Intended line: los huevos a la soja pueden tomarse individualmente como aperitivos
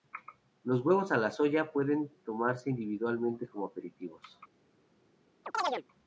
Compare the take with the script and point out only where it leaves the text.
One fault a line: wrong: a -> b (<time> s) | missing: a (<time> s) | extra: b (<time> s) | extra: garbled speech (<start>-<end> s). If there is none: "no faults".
no faults